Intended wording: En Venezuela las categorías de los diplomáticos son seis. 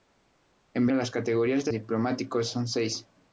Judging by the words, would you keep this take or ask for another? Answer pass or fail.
fail